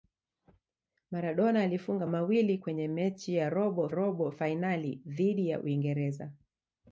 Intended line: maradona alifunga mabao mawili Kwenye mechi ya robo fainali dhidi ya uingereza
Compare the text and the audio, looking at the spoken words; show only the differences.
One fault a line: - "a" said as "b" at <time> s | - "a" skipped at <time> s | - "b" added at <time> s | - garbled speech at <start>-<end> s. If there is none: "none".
- "mabao" skipped at 2.1 s
- "robo" added at 3.9 s